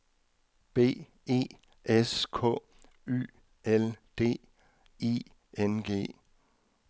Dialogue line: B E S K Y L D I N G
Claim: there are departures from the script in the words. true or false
false